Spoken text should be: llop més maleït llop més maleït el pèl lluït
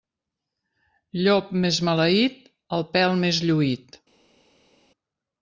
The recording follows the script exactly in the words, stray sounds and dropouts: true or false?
false